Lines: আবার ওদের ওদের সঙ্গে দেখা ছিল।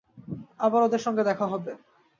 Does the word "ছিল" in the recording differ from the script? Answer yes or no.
yes